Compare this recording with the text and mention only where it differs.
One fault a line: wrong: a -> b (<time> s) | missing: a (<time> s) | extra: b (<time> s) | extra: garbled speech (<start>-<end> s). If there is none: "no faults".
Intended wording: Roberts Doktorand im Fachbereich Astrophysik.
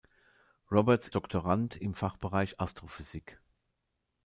no faults